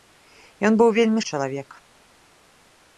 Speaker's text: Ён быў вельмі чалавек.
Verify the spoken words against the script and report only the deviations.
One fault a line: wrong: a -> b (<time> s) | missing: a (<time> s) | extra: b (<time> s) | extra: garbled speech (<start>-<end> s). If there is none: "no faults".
no faults